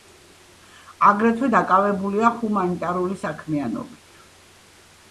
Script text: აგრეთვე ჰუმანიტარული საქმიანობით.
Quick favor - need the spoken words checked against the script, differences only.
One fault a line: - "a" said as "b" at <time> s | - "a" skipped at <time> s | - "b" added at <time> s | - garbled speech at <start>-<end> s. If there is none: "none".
- "დაკავებულია" added at 1.6 s